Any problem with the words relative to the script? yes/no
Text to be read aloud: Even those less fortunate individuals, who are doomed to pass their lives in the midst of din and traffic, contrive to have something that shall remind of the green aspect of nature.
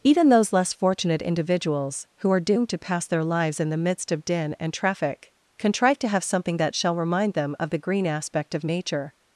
yes